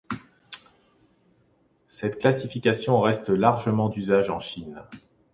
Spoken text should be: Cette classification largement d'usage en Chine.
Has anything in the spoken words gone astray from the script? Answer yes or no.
yes